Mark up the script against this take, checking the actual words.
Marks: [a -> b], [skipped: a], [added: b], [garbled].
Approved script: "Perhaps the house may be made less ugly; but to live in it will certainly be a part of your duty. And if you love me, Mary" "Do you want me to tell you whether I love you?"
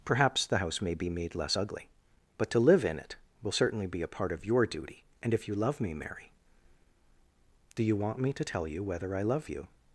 "Perhaps the house may be made less ugly; but to live in it will certainly be a part of your duty. And if you love me, Mary" "Do you want me to tell you whether I love you?"